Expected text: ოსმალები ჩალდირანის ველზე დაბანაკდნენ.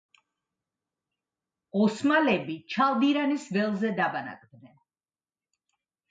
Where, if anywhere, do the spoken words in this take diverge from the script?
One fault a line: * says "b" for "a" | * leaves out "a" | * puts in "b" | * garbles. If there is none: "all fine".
all fine